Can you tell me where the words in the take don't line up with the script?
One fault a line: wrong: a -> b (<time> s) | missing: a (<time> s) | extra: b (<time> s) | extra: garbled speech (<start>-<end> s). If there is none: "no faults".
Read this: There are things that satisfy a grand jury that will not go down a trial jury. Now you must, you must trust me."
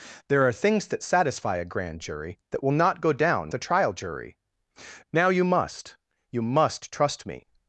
no faults